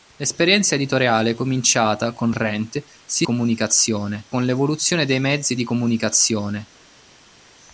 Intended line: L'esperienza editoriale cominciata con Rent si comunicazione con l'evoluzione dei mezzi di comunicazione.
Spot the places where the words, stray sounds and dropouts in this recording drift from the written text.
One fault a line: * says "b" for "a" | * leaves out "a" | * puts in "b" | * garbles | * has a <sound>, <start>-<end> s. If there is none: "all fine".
all fine